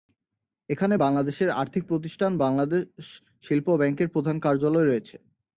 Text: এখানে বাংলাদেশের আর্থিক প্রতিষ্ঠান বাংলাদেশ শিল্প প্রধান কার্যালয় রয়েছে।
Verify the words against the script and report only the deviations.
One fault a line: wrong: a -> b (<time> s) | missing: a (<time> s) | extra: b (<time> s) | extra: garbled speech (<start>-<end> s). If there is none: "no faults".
extra: ব্যাংকের (3.8 s)